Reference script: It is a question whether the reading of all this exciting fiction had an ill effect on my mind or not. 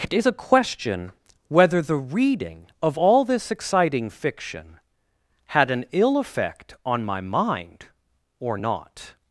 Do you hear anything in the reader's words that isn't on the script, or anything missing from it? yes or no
no